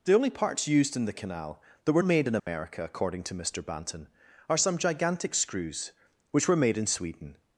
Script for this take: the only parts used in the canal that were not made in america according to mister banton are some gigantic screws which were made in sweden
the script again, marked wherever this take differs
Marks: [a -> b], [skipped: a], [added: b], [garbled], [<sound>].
the only parts used in the canal that were [skipped: not] made in america [dropout] according to mister banton are some gigantic screws which were made in sweden